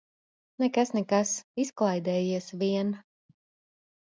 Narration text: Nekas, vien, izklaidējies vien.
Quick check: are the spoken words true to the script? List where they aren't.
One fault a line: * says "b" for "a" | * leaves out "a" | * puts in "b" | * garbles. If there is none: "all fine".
* says "nekas" for "vien"